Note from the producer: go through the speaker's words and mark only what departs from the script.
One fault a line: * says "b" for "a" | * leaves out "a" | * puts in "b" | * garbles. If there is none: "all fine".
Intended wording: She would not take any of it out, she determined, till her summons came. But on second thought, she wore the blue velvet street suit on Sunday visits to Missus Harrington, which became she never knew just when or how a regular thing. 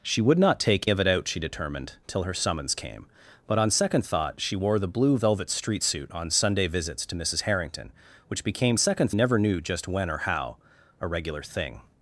* leaves out "any"
* says "second" for "she"